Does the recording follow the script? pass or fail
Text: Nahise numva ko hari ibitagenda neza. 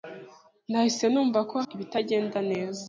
fail